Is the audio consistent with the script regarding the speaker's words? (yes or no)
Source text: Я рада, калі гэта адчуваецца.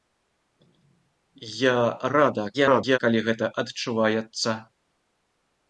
no